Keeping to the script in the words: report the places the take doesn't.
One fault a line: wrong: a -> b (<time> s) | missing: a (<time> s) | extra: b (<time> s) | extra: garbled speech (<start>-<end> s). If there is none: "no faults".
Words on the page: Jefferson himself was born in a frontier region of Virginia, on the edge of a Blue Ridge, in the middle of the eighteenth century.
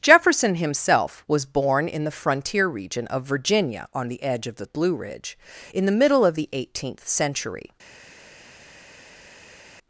wrong: a -> the (2.0 s)
wrong: a -> the (4.5 s)